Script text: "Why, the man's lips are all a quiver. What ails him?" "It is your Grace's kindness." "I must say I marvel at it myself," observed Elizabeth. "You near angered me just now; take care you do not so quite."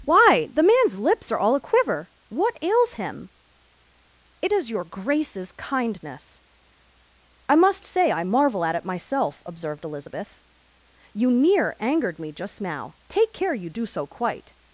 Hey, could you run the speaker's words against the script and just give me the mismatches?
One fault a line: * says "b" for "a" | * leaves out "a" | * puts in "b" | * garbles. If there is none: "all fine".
* leaves out "not"